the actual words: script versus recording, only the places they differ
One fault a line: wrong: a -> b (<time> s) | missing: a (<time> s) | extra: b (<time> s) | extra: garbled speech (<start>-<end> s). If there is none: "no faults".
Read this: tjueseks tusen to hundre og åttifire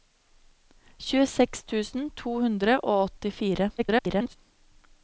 extra: garbled speech (3.8-4.4 s)